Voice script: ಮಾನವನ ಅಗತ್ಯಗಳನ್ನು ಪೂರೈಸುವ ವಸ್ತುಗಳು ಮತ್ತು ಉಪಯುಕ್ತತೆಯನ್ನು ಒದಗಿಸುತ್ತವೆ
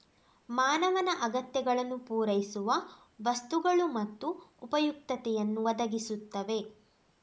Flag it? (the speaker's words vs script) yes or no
no